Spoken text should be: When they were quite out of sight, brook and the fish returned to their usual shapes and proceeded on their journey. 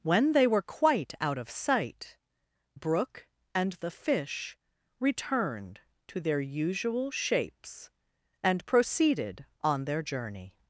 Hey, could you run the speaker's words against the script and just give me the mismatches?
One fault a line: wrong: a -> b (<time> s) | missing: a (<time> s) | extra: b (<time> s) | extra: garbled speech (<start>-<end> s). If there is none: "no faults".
no faults